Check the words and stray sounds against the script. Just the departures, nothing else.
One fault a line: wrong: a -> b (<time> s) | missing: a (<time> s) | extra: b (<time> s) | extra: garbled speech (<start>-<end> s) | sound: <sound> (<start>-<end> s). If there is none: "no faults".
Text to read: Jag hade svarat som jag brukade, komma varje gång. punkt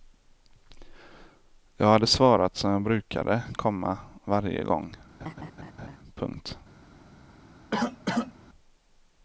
sound: laugh (5.2-6.0 s)
sound: cough (7.7-8.3 s)